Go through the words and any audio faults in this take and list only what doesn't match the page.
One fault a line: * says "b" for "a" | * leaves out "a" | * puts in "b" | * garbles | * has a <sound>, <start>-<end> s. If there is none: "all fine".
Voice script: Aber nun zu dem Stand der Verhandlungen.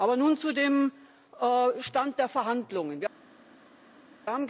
all fine